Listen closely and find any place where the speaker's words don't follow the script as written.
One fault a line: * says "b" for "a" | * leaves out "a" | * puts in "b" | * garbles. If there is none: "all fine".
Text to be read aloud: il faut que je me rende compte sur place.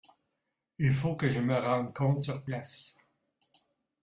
all fine